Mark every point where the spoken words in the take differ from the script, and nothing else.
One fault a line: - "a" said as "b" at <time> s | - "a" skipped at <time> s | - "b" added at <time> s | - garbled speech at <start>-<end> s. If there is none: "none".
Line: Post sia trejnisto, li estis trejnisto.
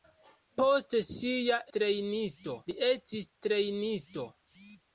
none